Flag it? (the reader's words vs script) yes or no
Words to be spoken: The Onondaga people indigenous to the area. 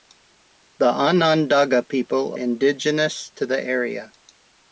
no